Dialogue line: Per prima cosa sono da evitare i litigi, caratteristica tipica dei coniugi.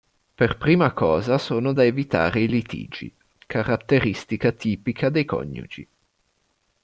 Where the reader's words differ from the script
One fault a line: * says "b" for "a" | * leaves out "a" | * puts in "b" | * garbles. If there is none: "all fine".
all fine